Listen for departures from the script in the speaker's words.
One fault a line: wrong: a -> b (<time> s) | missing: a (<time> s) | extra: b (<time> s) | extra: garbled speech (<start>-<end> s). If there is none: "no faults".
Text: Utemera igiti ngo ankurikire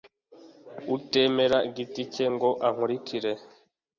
extra: cye (2.1 s)